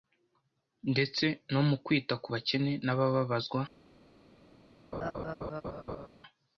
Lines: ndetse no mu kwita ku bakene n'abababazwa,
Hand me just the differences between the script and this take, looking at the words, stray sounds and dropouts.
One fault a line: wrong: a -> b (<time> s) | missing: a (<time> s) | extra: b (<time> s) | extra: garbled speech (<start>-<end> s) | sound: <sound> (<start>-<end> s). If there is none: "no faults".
sound: laugh (4.9-6.1 s)